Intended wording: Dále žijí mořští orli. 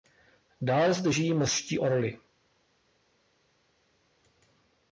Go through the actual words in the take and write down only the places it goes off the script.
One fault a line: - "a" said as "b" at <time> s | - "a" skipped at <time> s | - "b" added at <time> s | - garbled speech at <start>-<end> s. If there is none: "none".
- "zde" added at 0.9 s